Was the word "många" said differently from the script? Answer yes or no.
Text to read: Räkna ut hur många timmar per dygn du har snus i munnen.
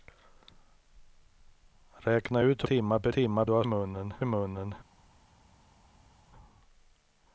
yes